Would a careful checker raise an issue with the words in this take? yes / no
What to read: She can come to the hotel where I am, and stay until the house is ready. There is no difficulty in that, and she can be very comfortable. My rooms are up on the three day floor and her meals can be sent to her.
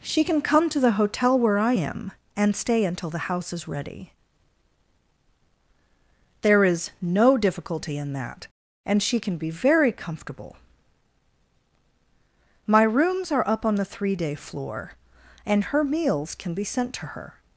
no